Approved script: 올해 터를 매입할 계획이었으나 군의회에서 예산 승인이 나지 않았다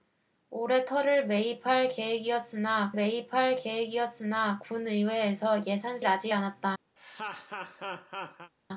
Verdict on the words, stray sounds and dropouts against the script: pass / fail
fail